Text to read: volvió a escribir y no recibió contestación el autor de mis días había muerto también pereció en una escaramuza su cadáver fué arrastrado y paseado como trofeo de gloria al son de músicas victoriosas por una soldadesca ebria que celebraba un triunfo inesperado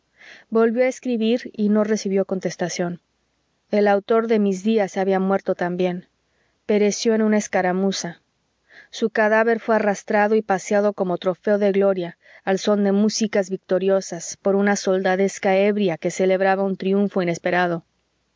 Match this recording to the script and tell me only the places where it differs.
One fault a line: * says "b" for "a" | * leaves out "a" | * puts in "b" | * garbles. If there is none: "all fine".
all fine